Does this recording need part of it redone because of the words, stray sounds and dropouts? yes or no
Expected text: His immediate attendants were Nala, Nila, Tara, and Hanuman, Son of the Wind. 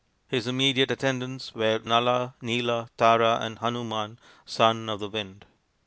no